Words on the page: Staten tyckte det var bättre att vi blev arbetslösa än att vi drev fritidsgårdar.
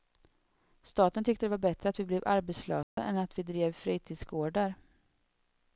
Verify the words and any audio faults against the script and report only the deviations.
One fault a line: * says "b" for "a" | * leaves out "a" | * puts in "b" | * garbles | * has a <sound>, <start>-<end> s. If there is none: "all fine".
* has a dropout, 2.8-3.0 s